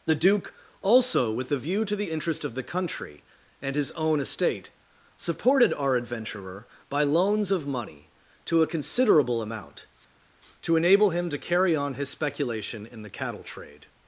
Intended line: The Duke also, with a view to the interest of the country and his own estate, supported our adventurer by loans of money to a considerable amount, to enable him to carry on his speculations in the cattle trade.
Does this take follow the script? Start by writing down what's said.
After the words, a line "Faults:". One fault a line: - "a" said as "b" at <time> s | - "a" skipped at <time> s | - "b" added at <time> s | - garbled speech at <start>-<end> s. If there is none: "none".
The Duke also, with a view to the interest of the country and his own estate, supported our adventurer by loans of money to a considerable amount, to enable him to carry on his speculation in the cattle trade.
Faults:
- "speculations" said as "speculation" at 12.1 s